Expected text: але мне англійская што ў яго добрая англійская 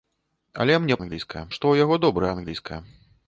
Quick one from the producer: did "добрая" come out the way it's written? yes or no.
yes